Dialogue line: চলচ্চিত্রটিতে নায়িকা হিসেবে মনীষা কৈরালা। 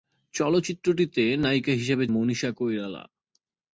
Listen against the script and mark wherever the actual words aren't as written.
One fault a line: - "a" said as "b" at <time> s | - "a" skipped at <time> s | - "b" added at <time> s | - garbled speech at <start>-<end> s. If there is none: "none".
none